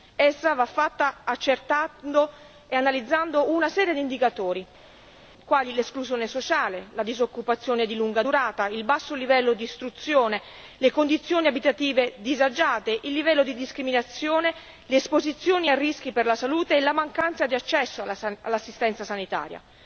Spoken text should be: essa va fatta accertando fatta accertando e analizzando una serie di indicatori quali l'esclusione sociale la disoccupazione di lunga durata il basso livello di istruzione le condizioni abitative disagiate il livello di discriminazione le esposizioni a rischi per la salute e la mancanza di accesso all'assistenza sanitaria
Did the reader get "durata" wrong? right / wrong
right